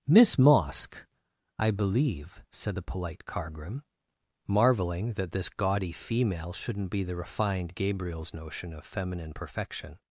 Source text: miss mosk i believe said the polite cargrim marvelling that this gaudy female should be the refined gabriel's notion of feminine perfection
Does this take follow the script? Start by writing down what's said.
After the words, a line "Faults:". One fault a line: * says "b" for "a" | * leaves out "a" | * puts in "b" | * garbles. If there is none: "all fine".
miss mosk i believe said the polite cargrim marvelling that this gaudy female shouldn't be the refined gabriel's notion of feminine perfection
Faults:
* says "shouldn't" for "should"